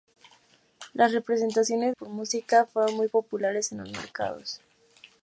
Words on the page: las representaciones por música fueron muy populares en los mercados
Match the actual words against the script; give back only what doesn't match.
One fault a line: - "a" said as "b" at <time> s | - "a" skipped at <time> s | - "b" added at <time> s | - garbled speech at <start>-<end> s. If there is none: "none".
none